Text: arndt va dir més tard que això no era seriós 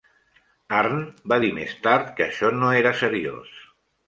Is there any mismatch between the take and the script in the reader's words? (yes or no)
no